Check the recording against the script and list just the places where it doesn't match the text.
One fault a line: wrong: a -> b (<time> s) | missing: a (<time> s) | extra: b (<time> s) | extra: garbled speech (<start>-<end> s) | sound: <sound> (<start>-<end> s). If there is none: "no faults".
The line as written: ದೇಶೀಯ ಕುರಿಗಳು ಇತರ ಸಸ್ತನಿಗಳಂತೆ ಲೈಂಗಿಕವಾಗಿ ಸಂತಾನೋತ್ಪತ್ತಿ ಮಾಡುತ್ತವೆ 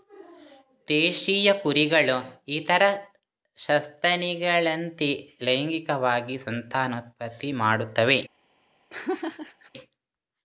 sound: laugh (8.9-9.7 s)